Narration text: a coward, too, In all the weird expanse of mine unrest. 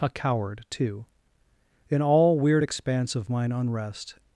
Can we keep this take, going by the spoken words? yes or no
no